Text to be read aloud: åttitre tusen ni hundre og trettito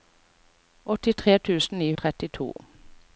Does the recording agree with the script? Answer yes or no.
no